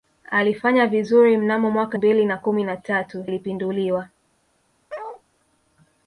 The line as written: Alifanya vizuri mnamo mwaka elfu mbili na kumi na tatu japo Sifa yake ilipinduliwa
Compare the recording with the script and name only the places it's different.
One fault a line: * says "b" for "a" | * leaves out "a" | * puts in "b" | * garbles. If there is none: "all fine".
* leaves out "elfu"
* leaves out "japo Sifa yake"